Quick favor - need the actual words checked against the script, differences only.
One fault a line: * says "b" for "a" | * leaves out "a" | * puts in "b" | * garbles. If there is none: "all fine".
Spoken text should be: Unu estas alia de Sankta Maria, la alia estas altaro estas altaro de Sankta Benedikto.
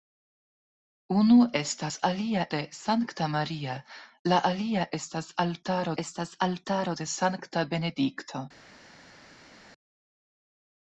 all fine